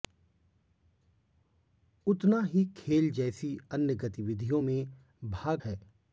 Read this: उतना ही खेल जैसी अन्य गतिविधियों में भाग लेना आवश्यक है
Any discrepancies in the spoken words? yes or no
yes